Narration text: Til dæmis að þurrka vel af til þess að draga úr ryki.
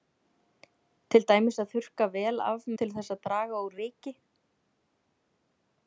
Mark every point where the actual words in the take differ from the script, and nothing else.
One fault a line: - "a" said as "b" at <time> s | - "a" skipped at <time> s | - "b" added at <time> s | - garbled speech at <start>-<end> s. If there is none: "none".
none